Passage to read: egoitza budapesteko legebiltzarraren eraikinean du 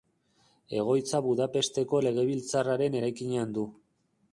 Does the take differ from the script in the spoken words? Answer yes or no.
no